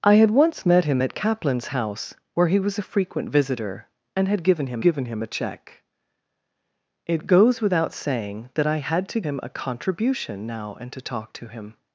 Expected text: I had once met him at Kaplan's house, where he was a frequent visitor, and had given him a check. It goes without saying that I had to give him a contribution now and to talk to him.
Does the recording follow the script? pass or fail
fail